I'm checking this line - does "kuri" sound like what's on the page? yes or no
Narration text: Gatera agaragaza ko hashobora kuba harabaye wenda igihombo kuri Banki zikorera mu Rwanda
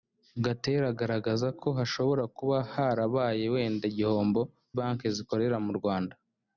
no